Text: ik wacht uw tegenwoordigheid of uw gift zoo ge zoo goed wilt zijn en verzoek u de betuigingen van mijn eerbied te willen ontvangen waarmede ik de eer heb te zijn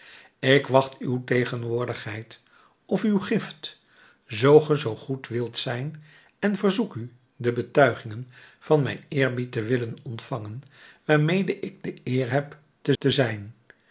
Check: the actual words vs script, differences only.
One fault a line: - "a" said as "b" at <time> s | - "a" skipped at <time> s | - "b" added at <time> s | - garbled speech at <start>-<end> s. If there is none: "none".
- "te" added at 13.0 s